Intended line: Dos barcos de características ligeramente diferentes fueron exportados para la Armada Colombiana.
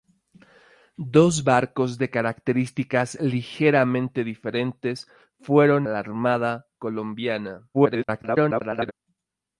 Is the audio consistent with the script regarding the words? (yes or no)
no